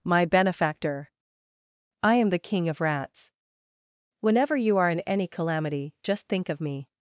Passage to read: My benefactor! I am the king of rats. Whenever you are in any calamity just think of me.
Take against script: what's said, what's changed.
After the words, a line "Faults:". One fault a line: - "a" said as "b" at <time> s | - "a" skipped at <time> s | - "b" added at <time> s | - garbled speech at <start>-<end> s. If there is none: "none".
My benefactor! I am the king of rats. Whenever you are in any calamity just think of me.
Faults:
none